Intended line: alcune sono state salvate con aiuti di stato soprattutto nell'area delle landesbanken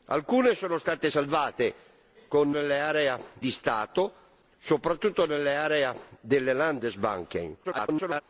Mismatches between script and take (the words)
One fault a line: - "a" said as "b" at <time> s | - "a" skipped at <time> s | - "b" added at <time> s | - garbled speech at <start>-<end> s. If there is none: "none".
- "aiuti" said as "nell'area" at 2.5 s
- garbled speech at 7.6-8.2 s